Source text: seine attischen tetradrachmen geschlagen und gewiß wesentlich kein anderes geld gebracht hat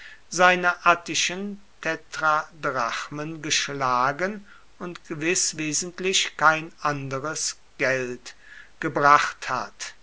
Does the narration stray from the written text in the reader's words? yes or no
no